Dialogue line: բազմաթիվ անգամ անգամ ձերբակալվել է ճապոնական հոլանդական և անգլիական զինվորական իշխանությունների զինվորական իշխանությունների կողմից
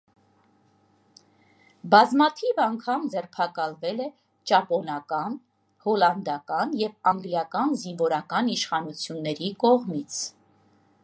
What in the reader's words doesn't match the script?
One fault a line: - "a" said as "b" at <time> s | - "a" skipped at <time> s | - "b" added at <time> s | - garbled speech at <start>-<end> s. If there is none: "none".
- "անգամ" skipped at 3.0 s
- "զինվորական իշխանությունների" skipped at 9.5 s